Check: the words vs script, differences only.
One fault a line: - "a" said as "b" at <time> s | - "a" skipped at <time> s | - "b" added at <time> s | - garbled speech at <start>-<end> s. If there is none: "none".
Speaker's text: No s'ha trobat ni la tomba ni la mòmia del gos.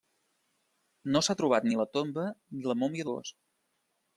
- "del" skipped at 3.1 s